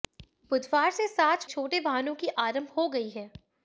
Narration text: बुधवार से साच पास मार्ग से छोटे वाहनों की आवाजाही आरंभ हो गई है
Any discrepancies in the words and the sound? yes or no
yes